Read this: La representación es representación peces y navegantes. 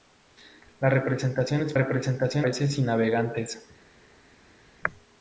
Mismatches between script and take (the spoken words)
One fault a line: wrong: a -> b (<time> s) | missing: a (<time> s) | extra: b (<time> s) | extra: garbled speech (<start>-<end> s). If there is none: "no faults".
no faults